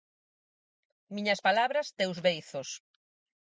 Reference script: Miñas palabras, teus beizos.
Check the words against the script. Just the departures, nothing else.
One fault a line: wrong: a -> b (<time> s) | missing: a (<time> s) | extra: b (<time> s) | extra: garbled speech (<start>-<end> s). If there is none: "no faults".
no faults